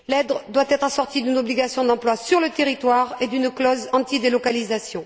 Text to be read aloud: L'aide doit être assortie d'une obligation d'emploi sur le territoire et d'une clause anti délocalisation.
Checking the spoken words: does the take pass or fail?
pass